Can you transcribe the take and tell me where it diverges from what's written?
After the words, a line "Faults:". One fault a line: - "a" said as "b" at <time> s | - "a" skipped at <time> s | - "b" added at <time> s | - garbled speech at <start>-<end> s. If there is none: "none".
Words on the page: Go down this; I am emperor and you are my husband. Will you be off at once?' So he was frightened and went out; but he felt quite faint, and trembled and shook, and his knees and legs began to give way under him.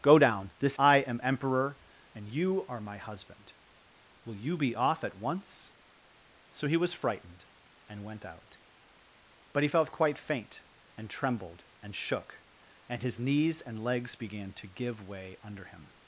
Go down this; I am emperor and you are my husband. Will you be off at once?' So he was frightened and went out; but he felt quite faint, and trembled and shook, and his knees and legs began to give way under him.
Faults:
none